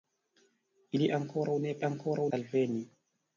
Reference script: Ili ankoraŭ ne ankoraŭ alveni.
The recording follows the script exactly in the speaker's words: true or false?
true